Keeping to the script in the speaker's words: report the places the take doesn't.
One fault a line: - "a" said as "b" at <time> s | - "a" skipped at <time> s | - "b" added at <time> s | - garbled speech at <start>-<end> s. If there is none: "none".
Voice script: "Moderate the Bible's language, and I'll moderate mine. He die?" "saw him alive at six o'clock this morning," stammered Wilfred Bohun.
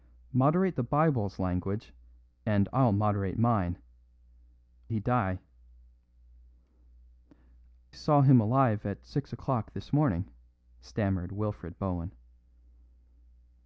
none